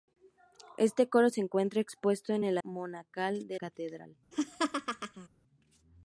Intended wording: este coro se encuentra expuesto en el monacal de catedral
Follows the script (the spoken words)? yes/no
yes